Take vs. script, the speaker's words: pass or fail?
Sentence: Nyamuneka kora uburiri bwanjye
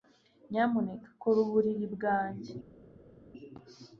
pass